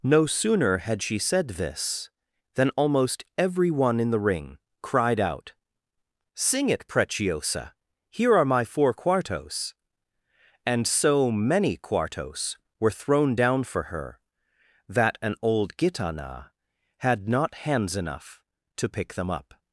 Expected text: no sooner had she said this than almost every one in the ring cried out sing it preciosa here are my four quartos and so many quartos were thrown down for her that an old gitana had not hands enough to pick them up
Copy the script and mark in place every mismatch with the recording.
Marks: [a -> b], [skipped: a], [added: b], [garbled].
no sooner had she said this than almost every one in the ring cried out sing it preciosa here are my four quartos and so many quartos were thrown down for her that an old gitana had not hands enough to pick them up